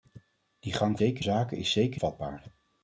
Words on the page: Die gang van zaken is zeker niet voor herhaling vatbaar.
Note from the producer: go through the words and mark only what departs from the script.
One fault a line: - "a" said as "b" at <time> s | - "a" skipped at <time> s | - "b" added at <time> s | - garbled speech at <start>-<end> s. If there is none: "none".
- "van" said as "zeker" at 1.0 s
- "niet voor herhaling" skipped at 2.0 s